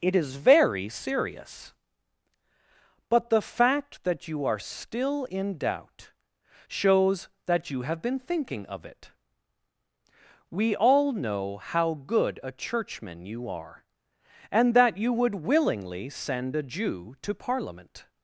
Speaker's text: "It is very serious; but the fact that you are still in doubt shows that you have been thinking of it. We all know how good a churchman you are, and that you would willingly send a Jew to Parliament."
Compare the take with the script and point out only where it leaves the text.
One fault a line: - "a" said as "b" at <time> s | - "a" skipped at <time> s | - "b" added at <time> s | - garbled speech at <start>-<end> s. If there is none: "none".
none